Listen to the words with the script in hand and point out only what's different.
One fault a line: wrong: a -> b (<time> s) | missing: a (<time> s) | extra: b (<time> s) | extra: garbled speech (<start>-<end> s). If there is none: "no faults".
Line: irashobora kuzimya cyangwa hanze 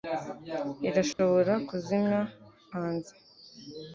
missing: cyangwa (2.2 s)